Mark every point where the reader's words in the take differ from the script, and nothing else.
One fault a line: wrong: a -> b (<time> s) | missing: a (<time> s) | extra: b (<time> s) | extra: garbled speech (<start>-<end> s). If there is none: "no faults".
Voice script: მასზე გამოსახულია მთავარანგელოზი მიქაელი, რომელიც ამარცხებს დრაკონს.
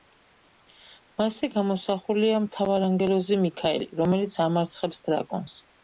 no faults